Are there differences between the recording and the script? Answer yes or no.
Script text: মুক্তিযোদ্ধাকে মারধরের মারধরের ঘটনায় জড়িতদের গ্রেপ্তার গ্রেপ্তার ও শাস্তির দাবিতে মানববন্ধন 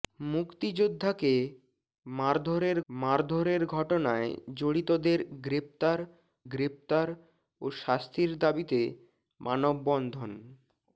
no